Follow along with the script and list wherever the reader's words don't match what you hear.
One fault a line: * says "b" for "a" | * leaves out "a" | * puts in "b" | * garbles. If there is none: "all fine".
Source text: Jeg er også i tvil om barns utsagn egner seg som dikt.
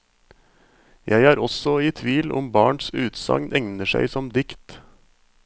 all fine